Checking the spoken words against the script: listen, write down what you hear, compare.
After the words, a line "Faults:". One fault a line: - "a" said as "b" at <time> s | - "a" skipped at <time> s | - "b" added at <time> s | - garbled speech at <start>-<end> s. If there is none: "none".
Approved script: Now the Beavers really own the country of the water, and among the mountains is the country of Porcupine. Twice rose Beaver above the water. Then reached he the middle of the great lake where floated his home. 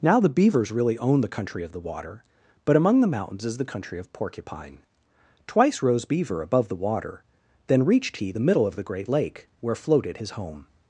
Now the Beavers really own the country of the water, but among the mountains is the country of Porcupine. Twice rose Beaver above the water. Then reached he the middle of the great lake where floated his home.
Faults:
- "and" said as "but" at 2.6 s